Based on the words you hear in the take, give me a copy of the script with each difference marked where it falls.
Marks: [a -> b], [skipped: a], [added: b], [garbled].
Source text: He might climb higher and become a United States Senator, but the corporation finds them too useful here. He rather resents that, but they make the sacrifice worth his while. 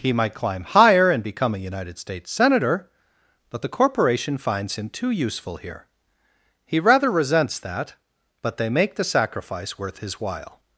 He might climb higher and become a United States Senator, but the corporation finds [them -> him] too useful here. He rather resents that, but they make the sacrifice worth his while.